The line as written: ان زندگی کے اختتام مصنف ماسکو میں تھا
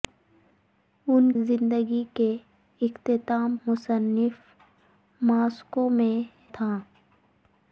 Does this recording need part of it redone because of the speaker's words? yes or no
no